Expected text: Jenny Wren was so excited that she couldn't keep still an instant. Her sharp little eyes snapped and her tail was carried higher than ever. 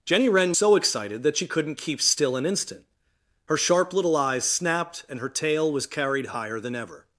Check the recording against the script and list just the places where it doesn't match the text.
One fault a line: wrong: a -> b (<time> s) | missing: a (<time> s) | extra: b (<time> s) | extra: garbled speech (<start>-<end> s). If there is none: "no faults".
missing: was (0.6 s)